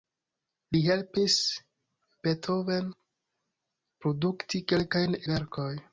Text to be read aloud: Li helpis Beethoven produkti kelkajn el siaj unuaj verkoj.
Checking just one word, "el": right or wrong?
wrong